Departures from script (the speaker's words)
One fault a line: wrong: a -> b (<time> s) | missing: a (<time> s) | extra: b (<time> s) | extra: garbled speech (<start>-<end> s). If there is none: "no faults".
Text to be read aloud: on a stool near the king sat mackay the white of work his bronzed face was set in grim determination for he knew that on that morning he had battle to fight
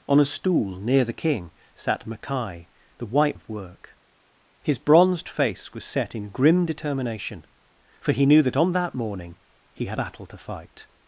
no faults